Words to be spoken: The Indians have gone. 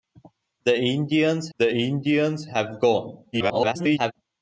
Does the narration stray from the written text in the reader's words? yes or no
yes